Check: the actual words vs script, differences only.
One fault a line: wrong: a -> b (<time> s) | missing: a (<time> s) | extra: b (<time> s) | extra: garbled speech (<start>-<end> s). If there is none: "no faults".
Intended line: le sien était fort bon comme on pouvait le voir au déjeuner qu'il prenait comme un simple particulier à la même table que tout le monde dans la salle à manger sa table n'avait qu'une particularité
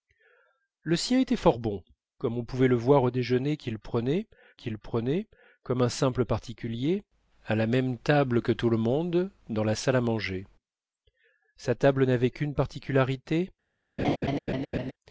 extra: qu'il prenait (4.5 s)